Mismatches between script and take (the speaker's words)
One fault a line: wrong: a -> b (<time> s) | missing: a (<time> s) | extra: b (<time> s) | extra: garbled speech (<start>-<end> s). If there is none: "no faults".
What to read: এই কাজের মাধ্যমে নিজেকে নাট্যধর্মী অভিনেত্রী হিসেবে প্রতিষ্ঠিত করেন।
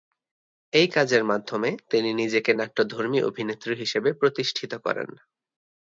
extra: তিনি (1.9 s)